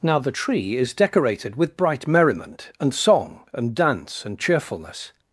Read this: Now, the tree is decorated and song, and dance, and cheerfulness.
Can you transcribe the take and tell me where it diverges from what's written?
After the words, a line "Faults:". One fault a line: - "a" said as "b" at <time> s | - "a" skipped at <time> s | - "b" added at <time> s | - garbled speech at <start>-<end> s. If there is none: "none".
Now, the tree is decorated with bright merriment, and song, and dance, and cheerfulness.
Faults:
- "with bright merriment" added at 1.6 s